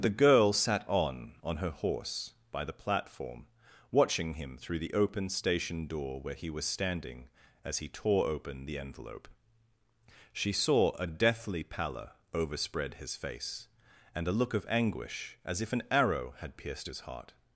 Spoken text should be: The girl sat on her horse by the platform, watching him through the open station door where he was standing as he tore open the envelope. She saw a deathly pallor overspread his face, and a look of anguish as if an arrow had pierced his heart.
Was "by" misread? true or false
false